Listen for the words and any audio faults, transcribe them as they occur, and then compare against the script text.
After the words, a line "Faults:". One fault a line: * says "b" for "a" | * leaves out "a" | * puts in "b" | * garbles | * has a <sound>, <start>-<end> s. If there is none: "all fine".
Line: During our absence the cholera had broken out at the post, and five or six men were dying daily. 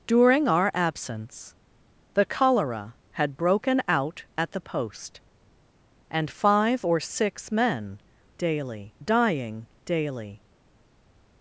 During our absence the cholera had broken out at the post, and five or six men daily dying daily.
Faults:
* says "daily" for "were"